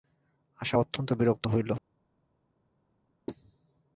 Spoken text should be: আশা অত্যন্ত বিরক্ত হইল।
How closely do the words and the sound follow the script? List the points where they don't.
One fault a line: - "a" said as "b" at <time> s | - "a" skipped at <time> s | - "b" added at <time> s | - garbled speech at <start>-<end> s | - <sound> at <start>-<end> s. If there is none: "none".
none